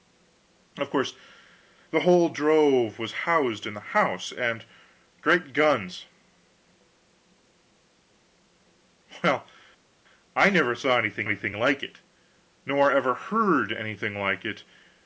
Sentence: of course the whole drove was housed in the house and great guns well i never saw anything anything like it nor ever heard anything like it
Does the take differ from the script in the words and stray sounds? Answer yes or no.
no